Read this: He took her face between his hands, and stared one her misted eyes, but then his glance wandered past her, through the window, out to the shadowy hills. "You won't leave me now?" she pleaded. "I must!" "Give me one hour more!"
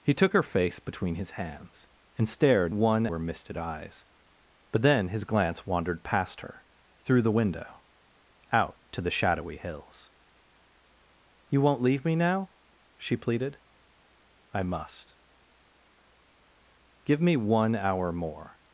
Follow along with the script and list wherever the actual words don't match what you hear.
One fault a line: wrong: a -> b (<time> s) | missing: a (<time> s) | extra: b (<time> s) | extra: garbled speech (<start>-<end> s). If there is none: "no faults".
no faults